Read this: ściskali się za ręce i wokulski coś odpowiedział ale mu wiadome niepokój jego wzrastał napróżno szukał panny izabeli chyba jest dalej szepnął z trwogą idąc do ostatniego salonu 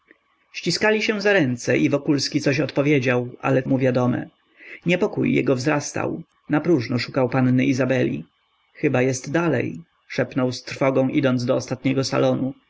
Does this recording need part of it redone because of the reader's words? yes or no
no